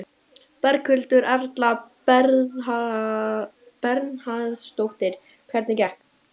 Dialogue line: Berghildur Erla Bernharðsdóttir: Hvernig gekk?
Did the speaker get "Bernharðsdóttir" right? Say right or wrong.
right